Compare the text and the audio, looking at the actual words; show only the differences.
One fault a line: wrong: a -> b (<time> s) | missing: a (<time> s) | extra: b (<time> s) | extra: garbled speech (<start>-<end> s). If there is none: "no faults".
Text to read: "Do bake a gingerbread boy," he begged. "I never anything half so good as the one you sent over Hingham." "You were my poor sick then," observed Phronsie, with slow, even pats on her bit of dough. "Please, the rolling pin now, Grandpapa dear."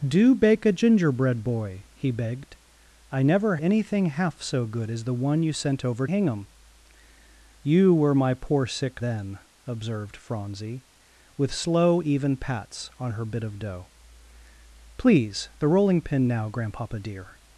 no faults